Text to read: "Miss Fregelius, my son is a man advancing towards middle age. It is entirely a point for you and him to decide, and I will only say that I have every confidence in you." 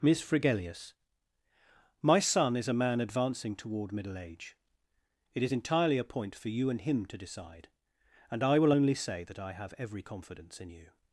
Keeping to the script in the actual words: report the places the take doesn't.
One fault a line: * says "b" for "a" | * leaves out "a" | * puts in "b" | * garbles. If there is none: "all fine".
* says "toward" for "towards"